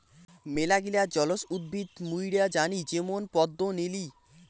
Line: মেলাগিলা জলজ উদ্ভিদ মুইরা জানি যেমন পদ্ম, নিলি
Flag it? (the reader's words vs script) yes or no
no